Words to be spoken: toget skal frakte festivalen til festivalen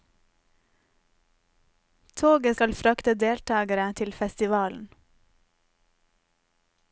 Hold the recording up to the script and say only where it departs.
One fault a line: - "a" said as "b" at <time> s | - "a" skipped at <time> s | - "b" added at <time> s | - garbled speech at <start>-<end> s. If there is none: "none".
- "festivalen" said as "deltagere" at 3.1 s